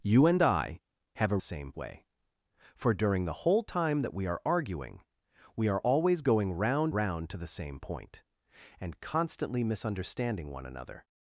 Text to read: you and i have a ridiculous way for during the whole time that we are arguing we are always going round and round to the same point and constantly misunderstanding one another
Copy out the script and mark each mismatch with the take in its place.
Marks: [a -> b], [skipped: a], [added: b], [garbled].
you and i have a [ridiculous -> same] way for during the whole time that we are arguing we are always going round [skipped: and] round to the same point and constantly misunderstanding one another